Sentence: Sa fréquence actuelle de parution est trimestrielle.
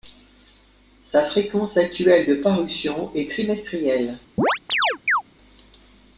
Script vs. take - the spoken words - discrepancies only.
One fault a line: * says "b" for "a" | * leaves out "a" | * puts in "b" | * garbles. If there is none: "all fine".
all fine